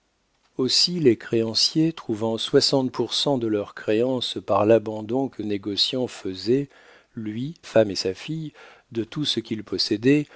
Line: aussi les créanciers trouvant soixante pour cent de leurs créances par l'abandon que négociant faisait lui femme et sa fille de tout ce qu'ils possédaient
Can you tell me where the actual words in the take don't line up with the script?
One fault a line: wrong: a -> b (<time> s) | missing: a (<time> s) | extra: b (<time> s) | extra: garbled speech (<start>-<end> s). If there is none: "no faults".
no faults